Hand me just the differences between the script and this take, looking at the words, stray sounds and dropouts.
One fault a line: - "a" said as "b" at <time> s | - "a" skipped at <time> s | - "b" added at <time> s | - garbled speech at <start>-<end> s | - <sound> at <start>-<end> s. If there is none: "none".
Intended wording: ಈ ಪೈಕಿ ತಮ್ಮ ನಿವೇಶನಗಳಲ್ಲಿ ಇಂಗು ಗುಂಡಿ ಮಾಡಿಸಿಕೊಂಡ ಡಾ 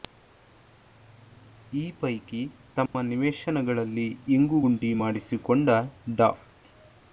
- dropout at 2.9-2.9 s